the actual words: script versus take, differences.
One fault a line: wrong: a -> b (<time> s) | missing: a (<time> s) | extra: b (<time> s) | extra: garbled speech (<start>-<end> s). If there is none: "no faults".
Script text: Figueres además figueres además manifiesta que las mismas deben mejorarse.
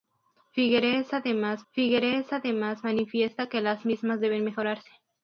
no faults